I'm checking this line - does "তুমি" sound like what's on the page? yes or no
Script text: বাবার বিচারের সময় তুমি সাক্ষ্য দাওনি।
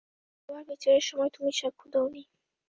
yes